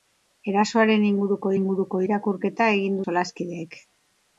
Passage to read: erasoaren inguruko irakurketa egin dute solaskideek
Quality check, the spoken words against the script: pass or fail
fail